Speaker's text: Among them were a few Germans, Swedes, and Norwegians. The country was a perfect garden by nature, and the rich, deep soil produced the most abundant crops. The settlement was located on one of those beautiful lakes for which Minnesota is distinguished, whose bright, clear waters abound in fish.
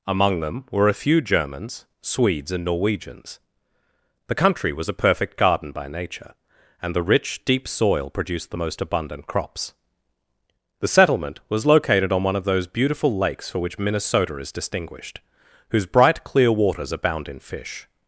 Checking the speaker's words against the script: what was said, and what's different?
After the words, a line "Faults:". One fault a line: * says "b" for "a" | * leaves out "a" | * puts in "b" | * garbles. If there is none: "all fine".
Among them were a few Germans, Swedes, and Norwegians. The country was a perfect garden by nature, and the rich, deep soil produced the most abundant crops. The settlement was located on one of those beautiful lakes for which Minnesota is distinguished, whose bright, clear waters abound in fish.
Faults:
all fine